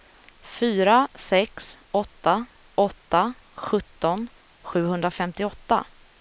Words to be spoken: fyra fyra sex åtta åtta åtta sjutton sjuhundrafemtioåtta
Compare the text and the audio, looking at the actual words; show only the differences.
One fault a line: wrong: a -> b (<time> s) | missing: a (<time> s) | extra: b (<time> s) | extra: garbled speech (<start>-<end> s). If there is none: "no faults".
missing: fyra (1.1 s)
missing: åtta (3.3 s)